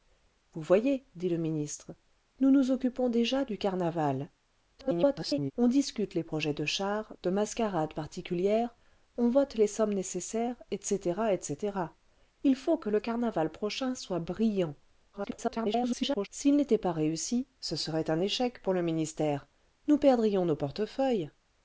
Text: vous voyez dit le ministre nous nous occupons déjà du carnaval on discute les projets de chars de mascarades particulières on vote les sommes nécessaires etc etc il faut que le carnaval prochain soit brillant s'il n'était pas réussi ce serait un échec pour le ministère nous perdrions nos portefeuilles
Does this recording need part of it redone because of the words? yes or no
yes